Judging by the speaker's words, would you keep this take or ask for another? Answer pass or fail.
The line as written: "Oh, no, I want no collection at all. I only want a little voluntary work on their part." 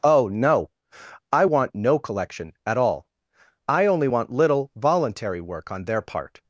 fail